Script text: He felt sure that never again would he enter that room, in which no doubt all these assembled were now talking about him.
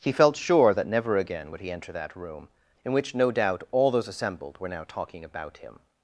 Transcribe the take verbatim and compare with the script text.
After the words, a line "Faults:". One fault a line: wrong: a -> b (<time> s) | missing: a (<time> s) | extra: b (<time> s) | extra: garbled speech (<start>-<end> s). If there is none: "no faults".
He felt sure that never again would he enter that room, in which no doubt all those assembled were now talking about him.
Faults:
wrong: these -> those (3.9 s)